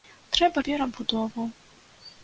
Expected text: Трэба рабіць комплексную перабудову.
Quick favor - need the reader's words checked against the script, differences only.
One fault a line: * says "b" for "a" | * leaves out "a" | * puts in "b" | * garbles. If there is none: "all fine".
* leaves out "рабіць комплексную"